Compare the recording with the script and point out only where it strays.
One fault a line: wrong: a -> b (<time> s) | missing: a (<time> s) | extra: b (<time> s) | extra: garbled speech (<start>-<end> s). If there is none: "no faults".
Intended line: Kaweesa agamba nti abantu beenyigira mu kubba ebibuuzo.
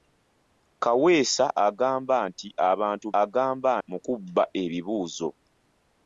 wrong: beenyigira -> agamba (3.2 s)